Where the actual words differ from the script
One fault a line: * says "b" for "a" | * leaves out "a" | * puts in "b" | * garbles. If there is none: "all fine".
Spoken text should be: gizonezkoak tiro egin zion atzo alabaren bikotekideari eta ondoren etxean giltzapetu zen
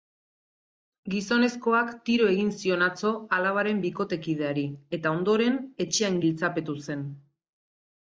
all fine